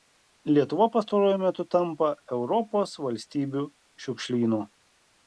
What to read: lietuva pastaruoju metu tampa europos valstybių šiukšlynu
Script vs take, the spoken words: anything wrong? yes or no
no